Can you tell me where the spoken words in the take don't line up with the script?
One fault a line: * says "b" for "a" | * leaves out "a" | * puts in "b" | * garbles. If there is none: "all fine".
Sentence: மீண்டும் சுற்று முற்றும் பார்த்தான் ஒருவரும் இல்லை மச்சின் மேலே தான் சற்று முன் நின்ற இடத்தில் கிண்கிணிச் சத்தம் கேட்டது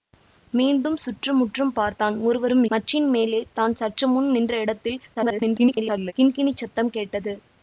* leaves out "இல்லை"
* garbles